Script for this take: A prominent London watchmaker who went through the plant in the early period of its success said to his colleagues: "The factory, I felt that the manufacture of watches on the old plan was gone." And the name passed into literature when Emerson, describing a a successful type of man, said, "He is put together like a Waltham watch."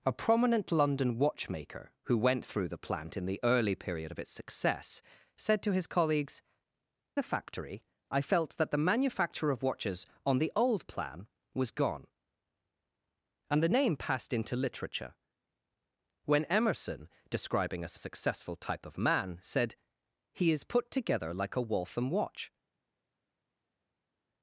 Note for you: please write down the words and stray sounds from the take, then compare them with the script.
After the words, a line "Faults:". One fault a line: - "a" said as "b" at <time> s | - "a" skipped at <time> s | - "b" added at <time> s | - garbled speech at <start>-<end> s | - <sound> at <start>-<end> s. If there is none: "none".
A prominent London watchmaker who went through the plant in the early period of its success said to his colleagues: "The factory, I felt that the manufacture of watches on the old plan was gone." And the name passed into literature when Emerson, describing a a successful type of man, said, "He is put together like a Waltham watch."
Faults:
none